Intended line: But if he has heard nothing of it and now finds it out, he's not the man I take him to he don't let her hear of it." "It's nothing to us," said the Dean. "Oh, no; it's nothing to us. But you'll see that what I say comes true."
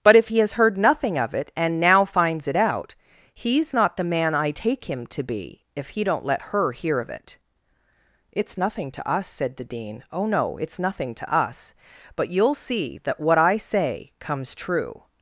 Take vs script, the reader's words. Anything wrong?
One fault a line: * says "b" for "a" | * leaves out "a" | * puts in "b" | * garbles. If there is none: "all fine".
* puts in "be if"